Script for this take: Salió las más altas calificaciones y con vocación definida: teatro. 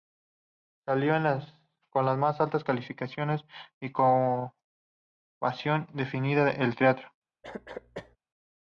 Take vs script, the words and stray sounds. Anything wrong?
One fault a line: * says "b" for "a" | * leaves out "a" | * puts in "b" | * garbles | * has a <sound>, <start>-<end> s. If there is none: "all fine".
* puts in "con"
* puts in "el"
* has a cough, 7.4-8.2 s